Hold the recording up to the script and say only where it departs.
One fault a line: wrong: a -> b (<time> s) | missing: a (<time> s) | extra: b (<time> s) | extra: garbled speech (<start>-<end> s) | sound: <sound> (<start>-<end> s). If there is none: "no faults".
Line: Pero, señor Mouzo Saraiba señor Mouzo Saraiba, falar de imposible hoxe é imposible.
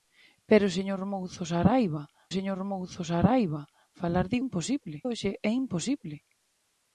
no faults